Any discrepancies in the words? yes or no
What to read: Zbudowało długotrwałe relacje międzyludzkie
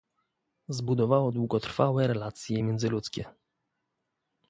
no